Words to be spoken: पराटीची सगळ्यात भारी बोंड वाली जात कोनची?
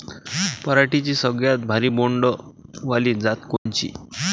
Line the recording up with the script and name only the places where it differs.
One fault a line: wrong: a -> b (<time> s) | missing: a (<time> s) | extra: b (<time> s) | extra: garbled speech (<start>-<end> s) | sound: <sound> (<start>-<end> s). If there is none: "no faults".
sound: dropout (3.6-3.7 s)